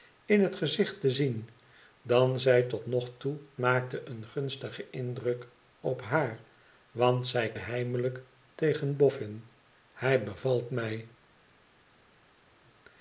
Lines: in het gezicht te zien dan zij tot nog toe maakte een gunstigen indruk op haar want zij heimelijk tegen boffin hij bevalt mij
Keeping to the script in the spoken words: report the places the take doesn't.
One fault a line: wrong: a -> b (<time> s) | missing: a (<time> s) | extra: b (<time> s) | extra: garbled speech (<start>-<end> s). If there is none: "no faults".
no faults